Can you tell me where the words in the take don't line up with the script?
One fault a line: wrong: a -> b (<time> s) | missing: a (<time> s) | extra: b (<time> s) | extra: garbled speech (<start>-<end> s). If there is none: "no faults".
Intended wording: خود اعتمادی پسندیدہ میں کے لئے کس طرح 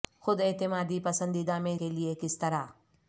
no faults